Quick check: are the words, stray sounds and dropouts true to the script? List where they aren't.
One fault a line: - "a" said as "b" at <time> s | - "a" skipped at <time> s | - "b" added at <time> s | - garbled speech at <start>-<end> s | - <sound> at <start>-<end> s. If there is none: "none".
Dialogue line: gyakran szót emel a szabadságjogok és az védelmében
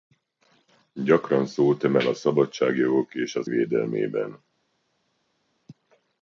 none